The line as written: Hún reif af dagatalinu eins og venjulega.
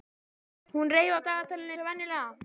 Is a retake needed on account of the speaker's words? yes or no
yes